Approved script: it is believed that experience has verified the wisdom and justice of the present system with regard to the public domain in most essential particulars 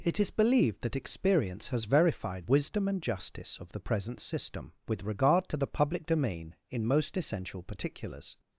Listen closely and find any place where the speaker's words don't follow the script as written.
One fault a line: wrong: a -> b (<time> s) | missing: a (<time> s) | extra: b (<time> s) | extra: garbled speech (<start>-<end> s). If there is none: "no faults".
missing: the (2.5 s)